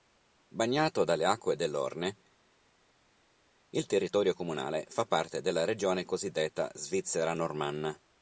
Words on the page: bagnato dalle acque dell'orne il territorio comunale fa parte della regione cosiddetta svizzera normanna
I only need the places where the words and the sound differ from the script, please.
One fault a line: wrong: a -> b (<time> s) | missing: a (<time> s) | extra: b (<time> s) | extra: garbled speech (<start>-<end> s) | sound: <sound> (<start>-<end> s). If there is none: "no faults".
no faults